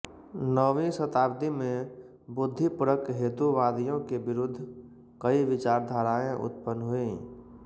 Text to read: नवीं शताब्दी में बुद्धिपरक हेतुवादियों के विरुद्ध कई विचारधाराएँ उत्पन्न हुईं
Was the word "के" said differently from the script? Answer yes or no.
no